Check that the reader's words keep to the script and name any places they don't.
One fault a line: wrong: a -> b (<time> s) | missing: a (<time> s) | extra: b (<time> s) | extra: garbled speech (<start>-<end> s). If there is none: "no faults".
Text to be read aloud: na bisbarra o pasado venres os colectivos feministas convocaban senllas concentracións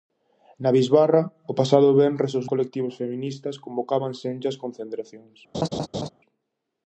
no faults